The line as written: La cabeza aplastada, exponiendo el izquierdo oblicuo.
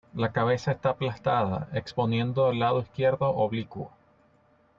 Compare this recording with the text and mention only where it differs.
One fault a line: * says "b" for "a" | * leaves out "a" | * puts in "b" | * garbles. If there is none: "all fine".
* puts in "está"
* puts in "lado"